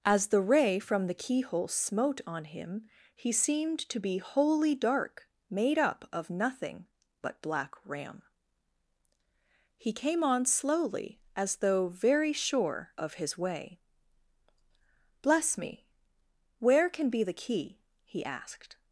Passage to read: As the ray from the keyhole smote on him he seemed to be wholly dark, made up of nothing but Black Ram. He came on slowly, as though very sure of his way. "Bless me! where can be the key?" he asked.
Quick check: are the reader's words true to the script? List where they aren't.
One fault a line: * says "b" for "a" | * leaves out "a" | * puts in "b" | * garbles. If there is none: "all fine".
all fine